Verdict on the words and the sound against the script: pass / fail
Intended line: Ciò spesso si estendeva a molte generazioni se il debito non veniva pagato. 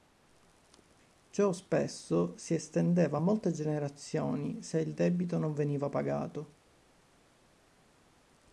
pass